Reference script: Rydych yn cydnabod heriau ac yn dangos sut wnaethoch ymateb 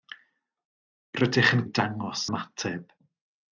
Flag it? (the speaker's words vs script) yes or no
yes